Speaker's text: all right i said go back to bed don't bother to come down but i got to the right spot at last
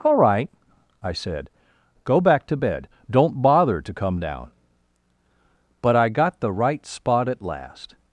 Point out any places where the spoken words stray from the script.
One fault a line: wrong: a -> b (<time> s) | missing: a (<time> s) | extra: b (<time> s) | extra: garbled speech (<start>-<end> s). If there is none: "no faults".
missing: to (6.4 s)